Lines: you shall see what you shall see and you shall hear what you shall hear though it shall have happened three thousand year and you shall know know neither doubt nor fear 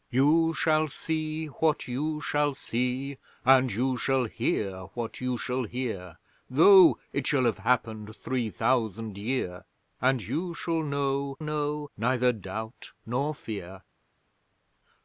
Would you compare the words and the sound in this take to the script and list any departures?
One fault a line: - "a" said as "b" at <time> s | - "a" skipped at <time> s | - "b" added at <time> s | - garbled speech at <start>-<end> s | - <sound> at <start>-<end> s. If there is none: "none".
none